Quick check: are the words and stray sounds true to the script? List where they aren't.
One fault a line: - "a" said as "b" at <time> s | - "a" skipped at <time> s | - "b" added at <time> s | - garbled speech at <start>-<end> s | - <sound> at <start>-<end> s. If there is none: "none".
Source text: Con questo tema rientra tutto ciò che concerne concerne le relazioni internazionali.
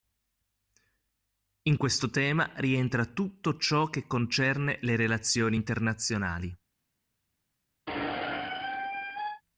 - "Con" said as "In" at 1.6 s
- "concerne" skipped at 4.8 s
- squeak at 7.9-9.4 s